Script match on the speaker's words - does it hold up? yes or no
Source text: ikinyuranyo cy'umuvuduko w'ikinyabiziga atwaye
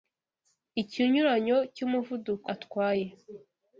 no